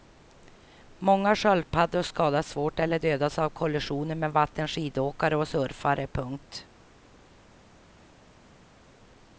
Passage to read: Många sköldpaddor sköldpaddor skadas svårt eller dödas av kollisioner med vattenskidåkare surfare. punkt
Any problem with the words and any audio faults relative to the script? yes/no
yes